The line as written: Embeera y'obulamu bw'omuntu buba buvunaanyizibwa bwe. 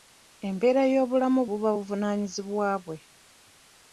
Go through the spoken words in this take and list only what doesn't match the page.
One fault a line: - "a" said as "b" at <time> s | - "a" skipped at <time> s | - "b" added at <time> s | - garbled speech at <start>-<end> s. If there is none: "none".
- "bw'omuntu" skipped at 1.4 s